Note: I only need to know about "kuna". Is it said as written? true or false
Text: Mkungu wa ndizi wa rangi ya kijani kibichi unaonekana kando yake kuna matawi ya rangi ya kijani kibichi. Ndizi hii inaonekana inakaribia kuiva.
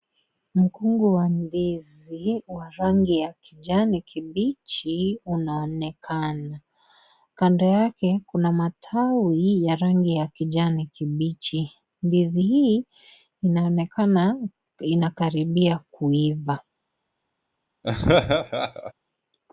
true